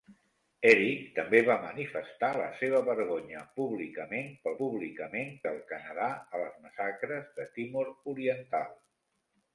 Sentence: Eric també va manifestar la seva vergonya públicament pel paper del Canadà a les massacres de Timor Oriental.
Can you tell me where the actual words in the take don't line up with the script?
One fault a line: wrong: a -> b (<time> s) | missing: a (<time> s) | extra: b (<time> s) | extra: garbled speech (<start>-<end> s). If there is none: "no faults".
wrong: paper -> públicament (4.6 s)